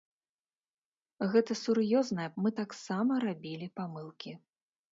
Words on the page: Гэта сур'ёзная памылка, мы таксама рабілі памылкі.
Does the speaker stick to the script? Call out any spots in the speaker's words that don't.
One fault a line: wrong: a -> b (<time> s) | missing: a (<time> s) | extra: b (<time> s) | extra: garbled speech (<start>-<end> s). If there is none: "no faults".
missing: памылка (2.3 s)